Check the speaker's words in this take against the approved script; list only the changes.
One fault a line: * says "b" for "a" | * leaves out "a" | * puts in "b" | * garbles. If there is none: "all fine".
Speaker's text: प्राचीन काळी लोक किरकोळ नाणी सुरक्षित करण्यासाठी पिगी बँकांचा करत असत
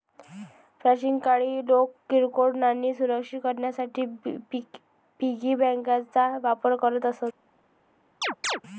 * puts in "वापर"